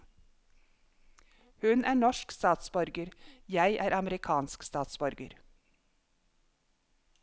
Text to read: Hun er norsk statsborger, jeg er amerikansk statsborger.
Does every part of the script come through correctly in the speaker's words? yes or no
yes